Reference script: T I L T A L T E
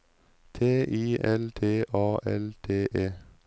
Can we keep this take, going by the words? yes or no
yes